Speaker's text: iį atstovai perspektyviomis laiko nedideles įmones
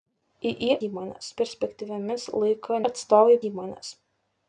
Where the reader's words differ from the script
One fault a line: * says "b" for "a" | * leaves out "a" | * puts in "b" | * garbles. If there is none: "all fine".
* says "įmones" for "atstovai"
* says "atstovai" for "nedideles"